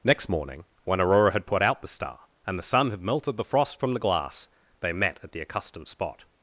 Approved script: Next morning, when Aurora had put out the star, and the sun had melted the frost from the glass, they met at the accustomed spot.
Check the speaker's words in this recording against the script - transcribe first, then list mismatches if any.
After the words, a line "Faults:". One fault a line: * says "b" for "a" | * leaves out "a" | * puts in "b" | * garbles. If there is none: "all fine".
Next morning, when Aurora had put out the star, and the sun had melted the frost from the glass, they met at the accustomed spot.
Faults:
all fine